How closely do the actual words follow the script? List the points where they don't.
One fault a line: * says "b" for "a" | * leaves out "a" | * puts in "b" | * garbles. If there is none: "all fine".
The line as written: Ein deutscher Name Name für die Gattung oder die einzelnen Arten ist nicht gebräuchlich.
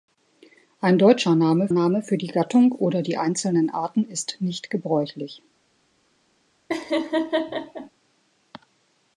all fine